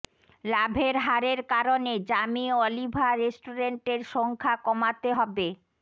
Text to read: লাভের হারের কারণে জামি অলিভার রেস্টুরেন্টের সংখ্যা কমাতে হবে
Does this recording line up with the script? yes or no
yes